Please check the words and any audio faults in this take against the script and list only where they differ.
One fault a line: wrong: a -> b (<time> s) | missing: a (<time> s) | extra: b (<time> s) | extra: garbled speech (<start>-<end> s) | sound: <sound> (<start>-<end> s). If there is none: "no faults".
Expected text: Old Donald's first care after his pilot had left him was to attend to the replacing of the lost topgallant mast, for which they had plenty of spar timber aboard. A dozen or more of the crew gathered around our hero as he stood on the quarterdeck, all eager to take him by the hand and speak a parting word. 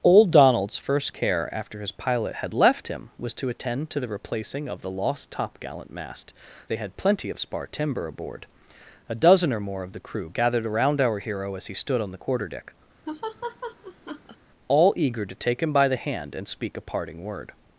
missing: for which (6.3 s)
sound: laugh (13.1-14.4 s)